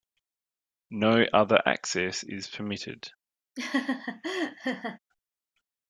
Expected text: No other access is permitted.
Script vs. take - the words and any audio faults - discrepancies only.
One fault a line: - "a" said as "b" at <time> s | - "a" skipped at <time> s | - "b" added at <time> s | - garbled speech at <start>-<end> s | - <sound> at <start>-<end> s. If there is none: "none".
- laugh at 3.6-5.0 s